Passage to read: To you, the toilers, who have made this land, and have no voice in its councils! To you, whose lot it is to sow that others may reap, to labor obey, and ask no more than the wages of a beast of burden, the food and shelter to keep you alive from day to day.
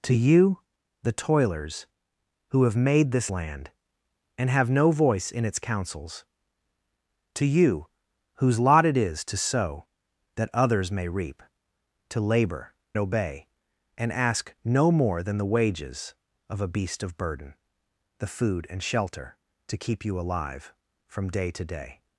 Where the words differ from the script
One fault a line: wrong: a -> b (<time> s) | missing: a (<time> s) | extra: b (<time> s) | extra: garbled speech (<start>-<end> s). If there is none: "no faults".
no faults